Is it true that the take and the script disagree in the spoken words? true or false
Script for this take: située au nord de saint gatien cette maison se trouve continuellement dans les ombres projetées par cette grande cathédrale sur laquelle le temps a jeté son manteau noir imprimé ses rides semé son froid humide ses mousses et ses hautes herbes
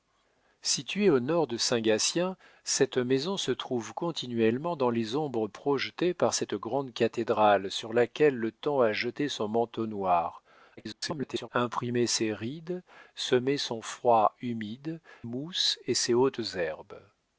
true